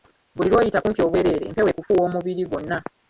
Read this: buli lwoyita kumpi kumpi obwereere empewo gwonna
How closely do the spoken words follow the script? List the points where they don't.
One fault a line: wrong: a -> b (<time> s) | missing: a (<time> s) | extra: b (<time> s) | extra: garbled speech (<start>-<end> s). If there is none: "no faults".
missing: kumpi (1.0 s)
extra: ekufuuwa omubiri (1.7 s)